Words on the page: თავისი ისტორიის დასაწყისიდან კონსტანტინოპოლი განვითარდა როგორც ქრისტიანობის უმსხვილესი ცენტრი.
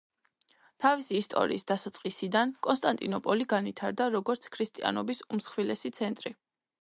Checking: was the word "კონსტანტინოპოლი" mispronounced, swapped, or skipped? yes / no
no